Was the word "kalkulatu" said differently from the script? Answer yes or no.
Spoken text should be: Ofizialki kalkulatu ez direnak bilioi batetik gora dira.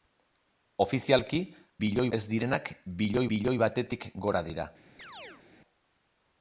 yes